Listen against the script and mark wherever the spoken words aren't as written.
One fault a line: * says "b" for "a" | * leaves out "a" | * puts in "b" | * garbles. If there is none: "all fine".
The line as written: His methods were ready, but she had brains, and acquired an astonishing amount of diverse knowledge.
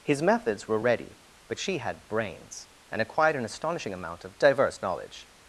all fine